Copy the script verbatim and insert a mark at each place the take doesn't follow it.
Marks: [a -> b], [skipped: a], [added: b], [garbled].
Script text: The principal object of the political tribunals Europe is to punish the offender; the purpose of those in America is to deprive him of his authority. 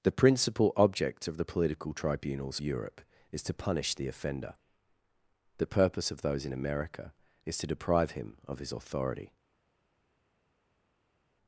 The principal object of the political tribunals Europe is to punish the offender; the purpose of those in America is to deprive him of his authority.